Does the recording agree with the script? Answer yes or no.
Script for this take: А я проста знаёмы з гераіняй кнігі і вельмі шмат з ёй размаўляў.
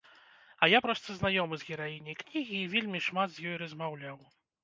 yes